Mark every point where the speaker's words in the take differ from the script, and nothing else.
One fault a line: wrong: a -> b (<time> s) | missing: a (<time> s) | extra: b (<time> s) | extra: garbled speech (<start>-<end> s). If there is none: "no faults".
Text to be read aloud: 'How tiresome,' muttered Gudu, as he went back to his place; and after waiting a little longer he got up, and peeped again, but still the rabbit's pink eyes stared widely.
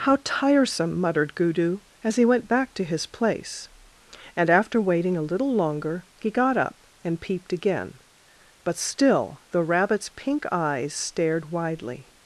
no faults